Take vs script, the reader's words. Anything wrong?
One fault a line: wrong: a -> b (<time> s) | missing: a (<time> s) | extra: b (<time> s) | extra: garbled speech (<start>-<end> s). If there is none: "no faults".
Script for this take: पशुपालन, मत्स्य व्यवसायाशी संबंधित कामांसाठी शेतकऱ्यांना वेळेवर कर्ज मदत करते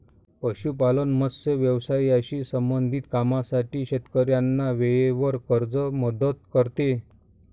no faults